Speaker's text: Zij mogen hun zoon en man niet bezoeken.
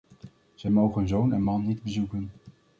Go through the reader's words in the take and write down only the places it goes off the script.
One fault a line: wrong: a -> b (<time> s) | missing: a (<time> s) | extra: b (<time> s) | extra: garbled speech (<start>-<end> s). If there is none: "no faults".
no faults